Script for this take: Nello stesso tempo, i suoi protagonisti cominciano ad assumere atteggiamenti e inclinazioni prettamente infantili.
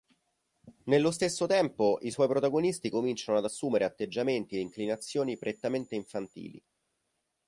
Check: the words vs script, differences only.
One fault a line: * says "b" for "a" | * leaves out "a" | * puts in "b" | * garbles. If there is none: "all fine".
all fine